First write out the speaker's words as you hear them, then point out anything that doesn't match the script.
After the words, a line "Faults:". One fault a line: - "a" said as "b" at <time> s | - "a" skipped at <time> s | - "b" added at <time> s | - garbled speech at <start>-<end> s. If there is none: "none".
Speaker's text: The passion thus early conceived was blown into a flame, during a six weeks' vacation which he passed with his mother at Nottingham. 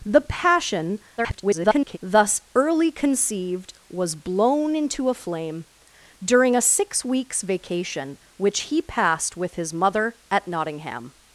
The passion [garbled] thus early conceived was blown into a flame, during a six weeks' vacation which he passed with his mother at Nottingham.
Faults:
- garbled speech at 1.2-2.0 s